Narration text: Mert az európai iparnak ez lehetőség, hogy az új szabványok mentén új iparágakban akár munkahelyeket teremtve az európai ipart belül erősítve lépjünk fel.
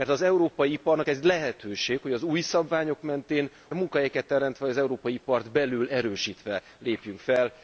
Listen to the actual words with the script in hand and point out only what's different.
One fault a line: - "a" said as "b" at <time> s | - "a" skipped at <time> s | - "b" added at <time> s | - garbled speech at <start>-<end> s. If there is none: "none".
- "új iparágakban akár" skipped at 3.5 s